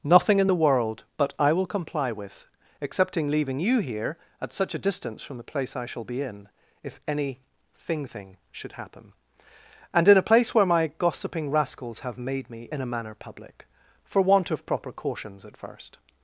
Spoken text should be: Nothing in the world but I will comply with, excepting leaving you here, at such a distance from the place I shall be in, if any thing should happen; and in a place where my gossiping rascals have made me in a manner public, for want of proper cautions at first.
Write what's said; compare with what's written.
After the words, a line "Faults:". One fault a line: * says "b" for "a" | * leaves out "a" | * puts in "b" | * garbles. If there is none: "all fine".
Nothing in the world but I will comply with, excepting leaving you here, at such a distance from the place I shall be in, if any thing thing should happen; and in a place where my gossiping rascals have made me in a manner public, for want of proper cautions at first.
Faults:
* puts in "thing"